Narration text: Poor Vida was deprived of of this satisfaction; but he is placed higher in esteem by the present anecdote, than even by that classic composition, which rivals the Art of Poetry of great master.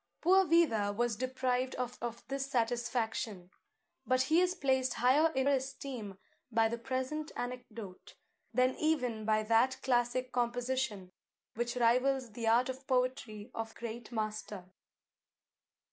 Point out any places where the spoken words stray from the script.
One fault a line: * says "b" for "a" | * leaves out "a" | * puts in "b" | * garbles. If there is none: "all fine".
all fine